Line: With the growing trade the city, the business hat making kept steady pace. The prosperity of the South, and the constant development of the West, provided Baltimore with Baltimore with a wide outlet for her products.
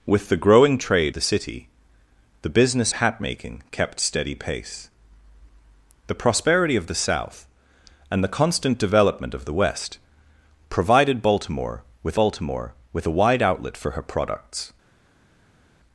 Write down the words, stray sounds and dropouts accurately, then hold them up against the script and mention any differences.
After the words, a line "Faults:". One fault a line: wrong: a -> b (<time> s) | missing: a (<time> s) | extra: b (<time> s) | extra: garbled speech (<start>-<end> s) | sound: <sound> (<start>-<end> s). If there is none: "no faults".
With the growing trade the city, the business hat making kept steady pace. The prosperity of the South, and the constant development of the West, provided Baltimore with Baltimore with a wide outlet for her products.
Faults:
no faults